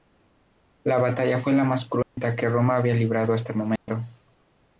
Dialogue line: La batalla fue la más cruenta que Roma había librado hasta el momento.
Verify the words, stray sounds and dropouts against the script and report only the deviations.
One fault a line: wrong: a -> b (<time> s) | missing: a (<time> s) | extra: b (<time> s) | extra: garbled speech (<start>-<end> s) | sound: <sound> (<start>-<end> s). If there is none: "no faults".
sound: dropout (2.0-2.2 s)
sound: dropout (3.8-3.9 s)